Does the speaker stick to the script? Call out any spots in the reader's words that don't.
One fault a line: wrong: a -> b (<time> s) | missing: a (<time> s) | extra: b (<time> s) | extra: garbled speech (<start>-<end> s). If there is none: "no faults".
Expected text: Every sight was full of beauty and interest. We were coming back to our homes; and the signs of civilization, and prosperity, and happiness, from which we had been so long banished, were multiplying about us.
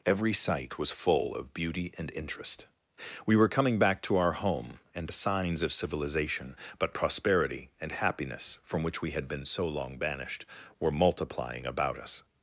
wrong: homes -> home (4.3 s)
wrong: and -> but (6.8 s)